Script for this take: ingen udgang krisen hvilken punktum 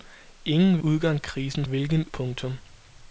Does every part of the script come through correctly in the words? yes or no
yes